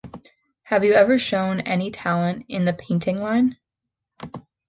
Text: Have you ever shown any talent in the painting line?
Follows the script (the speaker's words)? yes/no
yes